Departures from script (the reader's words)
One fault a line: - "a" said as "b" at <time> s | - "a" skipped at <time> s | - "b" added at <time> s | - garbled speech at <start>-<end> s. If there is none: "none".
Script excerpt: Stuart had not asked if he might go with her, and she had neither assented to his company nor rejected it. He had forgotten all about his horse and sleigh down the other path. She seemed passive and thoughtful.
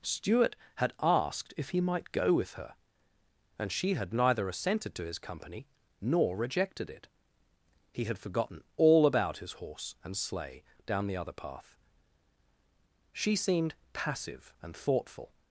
- "not" skipped at 0.9 s